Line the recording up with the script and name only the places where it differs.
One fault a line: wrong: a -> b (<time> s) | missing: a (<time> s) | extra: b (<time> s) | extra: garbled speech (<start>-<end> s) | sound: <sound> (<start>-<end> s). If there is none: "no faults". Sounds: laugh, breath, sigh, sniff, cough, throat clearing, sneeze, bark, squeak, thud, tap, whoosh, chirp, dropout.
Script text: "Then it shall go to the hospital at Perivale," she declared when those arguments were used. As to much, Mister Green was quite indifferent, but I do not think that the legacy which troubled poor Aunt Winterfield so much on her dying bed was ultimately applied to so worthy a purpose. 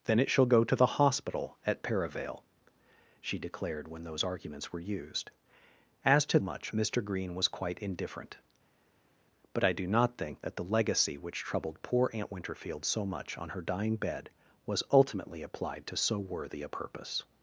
no faults